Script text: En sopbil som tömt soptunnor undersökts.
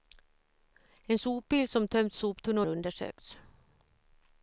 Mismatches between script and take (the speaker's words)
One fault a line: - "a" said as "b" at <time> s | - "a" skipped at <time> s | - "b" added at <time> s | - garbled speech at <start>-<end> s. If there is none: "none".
none